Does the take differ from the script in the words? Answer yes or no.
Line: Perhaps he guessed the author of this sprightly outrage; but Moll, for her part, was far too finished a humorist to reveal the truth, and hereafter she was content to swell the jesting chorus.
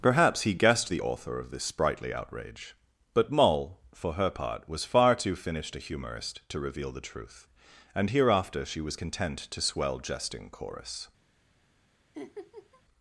yes